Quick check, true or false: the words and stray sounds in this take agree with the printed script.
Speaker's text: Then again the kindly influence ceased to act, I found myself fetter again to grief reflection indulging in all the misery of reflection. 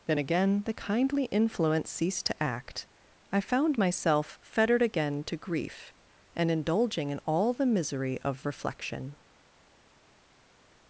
false